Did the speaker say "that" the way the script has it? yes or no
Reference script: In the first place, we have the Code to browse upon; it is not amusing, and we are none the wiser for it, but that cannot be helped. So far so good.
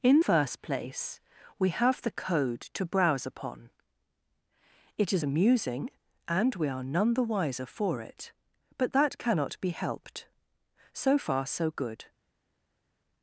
yes